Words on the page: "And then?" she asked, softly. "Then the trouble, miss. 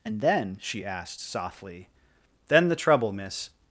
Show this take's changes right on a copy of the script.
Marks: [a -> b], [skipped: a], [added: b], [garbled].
"And then?" she asked, softly. "Then the trouble, miss.